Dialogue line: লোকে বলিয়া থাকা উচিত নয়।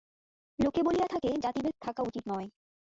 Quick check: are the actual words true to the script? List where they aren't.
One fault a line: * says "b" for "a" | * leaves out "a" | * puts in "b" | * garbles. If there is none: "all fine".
* puts in "থাকে জাতিভেদ"